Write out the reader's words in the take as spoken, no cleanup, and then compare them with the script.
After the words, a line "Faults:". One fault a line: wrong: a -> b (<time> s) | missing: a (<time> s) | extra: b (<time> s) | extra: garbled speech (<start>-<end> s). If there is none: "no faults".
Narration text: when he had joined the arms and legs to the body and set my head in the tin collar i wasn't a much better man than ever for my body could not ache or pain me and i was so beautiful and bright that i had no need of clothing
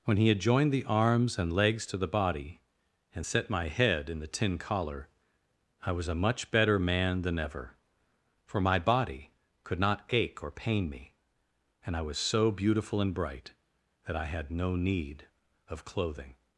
when he had joined the arms and legs to the body and set my head in the tin collar i was a much better man than ever for my body could not ache or pain me and i was so beautiful and bright that i had no need of clothing
Faults:
wrong: wasn't -> was (5.9 s)